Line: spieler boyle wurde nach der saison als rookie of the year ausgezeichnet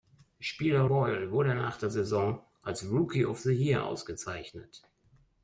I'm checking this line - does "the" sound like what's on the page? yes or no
yes